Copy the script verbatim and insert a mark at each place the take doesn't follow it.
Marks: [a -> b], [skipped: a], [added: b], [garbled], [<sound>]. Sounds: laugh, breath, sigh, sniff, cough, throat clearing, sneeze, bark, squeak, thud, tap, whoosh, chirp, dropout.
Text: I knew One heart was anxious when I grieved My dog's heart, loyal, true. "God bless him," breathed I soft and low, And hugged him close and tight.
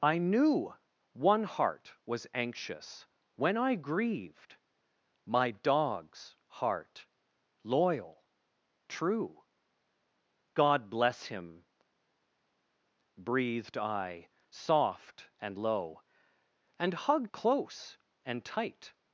I knew One heart was anxious when I grieved My dog's heart, loyal, true. "God bless him," breathed I soft and low, And hugged [skipped: him] close and tight.